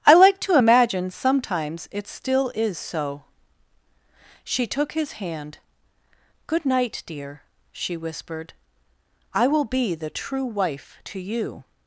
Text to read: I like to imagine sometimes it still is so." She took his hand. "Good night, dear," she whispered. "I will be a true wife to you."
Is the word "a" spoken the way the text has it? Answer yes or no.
no